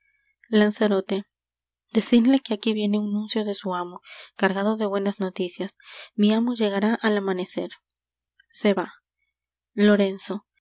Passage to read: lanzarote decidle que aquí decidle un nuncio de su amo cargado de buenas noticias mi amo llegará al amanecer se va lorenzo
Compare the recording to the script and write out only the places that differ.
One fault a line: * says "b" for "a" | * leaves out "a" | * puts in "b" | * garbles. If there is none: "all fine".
* says "viene" for "decidle"